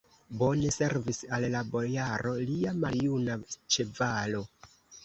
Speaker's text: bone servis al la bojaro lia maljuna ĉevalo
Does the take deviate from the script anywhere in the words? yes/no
no